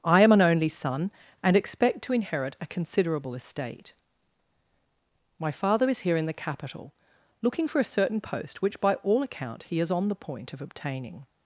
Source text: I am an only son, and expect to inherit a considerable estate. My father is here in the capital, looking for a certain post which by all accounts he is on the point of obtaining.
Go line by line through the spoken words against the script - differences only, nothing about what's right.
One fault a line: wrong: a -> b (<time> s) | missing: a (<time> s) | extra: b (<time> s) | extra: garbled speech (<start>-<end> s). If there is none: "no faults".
wrong: accounts -> account (9.2 s)